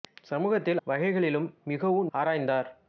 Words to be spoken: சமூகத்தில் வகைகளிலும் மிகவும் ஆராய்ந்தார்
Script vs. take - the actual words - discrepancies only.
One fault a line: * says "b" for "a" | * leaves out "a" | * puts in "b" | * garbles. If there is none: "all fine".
all fine